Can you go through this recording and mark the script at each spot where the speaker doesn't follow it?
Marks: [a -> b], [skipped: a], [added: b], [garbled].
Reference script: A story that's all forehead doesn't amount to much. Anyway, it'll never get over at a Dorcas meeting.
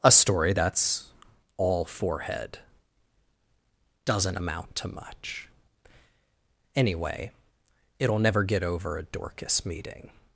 A story that's all forehead doesn't amount to much. Anyway, it'll never get over [skipped: at] a Dorcas meeting.